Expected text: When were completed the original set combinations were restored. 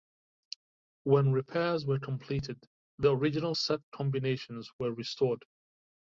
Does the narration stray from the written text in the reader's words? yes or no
yes